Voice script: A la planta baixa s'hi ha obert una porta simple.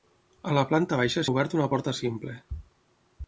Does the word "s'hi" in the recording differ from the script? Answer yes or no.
yes